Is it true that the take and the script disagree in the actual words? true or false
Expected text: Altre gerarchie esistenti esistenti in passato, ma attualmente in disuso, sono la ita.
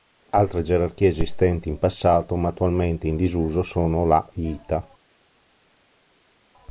true